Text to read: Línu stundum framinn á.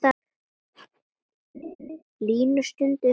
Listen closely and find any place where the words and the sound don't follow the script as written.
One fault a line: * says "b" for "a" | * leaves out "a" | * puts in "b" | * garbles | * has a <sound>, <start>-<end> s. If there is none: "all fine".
* has a laugh, 1.5-2.0 s